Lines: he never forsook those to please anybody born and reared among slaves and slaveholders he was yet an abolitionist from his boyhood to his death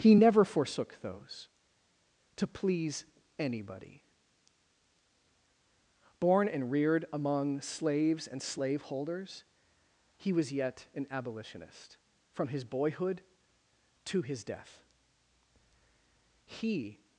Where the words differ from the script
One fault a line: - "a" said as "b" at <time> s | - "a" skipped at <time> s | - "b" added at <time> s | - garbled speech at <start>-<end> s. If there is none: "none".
- "he" added at 16.5 s